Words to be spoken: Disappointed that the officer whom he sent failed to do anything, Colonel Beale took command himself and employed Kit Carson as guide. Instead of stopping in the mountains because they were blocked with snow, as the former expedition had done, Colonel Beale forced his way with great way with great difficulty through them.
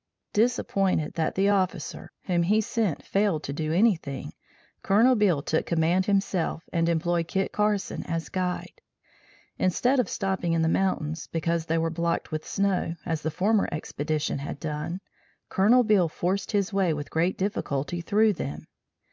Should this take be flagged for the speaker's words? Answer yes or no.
yes